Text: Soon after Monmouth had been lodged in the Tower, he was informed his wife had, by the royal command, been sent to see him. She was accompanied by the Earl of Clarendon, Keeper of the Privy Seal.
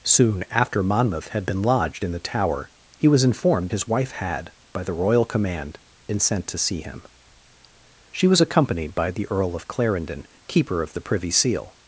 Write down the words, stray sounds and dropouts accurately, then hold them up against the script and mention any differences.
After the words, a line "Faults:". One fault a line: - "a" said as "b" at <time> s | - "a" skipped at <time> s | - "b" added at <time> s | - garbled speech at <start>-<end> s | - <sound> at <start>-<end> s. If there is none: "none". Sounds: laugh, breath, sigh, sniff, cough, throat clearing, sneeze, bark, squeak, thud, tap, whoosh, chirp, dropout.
Soon after Monmouth had been lodged in the Tower, he was informed his wife had, by the royal command, been sent to see him. She was accompanied by the Earl of Clarendon, Keeper of the Privy Seal.
Faults:
none